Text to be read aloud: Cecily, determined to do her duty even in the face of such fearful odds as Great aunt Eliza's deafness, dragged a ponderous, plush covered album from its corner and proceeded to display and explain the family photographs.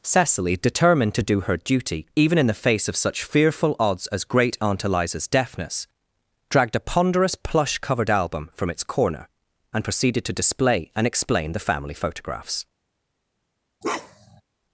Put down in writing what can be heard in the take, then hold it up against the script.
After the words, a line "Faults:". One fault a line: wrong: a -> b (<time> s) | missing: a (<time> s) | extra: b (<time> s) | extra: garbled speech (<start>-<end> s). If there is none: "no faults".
Cecily, determined to do her duty even in the face of such fearful odds as Great aunt Eliza's deafness, dragged a ponderous, plush covered album from its corner and proceeded to display and explain the family photographs.
Faults:
no faults